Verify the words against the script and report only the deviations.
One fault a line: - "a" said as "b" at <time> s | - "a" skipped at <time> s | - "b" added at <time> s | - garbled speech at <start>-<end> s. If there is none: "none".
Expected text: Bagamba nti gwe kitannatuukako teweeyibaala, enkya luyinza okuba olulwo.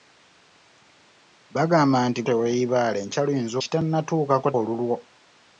- "gwe kitannatuukako" skipped at 2.2 s
- "okuba" said as "kitannatuukako" at 3.6 s